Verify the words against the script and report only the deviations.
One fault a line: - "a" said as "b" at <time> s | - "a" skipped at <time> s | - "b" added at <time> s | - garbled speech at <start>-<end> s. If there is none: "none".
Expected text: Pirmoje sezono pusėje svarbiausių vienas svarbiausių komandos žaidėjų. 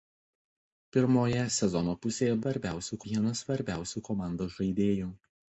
none